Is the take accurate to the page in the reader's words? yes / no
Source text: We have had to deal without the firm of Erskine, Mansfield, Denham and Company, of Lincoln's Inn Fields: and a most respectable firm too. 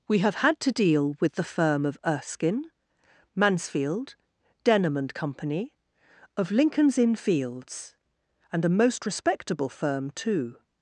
no